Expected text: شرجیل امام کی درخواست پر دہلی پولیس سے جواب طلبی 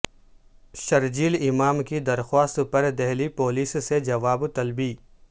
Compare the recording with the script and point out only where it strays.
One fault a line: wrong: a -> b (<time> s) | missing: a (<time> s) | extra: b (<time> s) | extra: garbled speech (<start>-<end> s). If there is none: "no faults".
no faults